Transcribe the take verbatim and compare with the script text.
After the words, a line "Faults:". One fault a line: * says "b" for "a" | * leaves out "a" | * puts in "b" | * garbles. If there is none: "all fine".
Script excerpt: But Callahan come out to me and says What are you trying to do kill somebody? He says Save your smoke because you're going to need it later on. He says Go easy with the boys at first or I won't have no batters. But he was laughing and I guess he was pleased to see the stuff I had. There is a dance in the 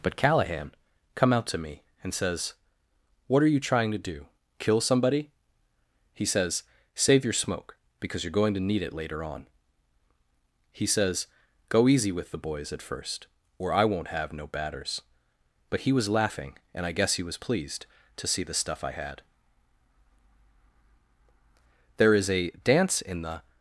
But Callahan come out to me and says What are you trying to do kill somebody? He says Save your smoke because you're going to need it later on. He says Go easy with the boys at first or I won't have no batters. But he was laughing and I guess he was pleased to see the stuff I had. There is a dance in the
Faults:
all fine